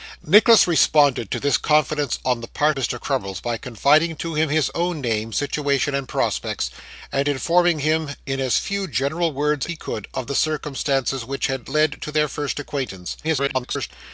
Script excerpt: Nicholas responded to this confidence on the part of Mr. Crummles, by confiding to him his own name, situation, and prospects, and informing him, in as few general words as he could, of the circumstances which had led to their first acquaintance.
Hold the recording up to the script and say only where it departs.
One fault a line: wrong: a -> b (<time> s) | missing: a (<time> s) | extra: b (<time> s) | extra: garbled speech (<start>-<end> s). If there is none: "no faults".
missing: of (2.8 s)
missing: as (9.7 s)
extra: garbled speech (13.2-13.9 s)